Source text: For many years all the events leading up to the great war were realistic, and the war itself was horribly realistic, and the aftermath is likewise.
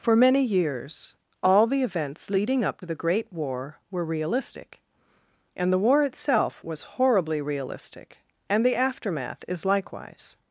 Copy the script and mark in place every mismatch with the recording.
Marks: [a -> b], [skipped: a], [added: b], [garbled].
For many years all the events leading up [skipped: to] the great war were realistic, and the war itself was horribly realistic, and the aftermath is likewise.